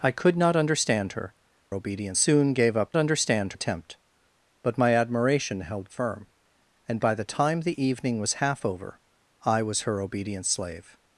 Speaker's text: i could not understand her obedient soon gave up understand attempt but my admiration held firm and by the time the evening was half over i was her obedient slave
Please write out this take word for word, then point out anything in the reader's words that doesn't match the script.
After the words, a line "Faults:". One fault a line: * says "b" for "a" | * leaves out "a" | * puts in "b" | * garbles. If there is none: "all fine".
i could not understand her obedient soon gave up understand attempt but my admiration held firm and by the time the evening was half over i was her obedient slave
Faults:
all fine